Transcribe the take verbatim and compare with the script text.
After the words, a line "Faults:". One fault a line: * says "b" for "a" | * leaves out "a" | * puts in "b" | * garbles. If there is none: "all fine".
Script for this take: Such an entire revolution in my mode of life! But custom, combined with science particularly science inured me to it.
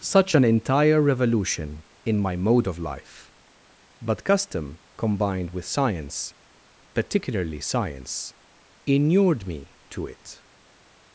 Such an entire revolution in my mode of life! But custom, combined with science particularly science inured me to it.
Faults:
all fine